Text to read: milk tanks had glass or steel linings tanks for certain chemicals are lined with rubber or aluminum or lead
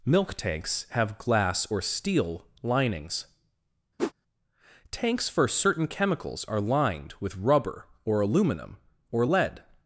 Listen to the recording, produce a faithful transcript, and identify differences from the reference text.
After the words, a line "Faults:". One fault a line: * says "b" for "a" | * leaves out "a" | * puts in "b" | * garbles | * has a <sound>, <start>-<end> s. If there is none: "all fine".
milk tanks have glass or steel linings tanks for certain chemicals are lined with rubber or aluminum or lead
Faults:
* says "have" for "had"
* has a whoosh, 4.0-4.1 s